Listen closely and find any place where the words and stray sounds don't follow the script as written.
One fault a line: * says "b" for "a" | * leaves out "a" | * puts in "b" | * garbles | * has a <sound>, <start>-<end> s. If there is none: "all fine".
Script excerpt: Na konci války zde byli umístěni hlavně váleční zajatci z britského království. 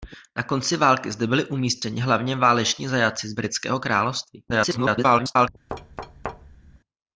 * garbles
* has a thud, 5.7-6.8 s